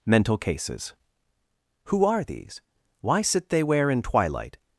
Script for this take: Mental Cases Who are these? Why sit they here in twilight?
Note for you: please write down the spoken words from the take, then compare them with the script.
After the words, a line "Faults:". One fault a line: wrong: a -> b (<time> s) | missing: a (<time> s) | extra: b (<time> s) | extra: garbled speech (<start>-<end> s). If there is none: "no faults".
Mental Cases Who are these? Why sit they where in twilight?
Faults:
wrong: here -> where (3.6 s)